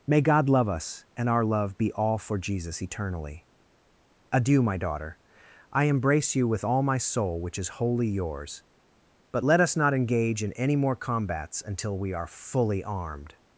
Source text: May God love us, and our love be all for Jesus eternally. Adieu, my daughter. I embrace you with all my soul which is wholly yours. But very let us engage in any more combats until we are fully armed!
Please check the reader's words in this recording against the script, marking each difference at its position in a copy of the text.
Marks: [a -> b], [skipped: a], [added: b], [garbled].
May God love us, and our love be all for Jesus eternally. Adieu, my daughter. I embrace you with all my soul which is wholly yours. But [skipped: very] let us [added: not] engage in any more combats until we are fully armed!